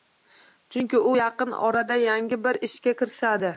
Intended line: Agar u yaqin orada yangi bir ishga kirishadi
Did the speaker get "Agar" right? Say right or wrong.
wrong